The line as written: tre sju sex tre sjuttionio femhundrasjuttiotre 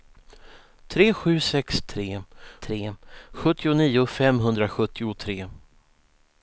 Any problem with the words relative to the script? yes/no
yes